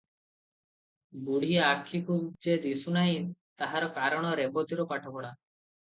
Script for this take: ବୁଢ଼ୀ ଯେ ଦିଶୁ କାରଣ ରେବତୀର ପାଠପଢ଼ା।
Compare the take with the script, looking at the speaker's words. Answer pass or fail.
fail